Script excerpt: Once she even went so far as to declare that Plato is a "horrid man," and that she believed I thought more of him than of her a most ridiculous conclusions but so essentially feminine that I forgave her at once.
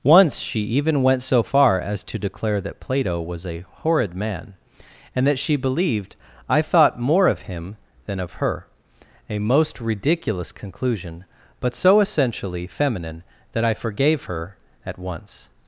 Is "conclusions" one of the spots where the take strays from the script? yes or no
yes